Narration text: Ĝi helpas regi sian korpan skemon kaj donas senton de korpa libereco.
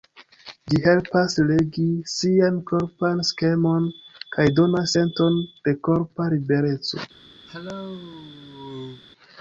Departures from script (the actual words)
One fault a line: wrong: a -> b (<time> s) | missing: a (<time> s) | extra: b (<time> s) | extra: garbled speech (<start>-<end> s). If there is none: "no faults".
no faults